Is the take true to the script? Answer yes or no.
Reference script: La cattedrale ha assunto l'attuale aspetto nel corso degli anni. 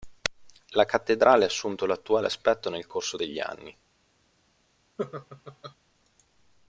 yes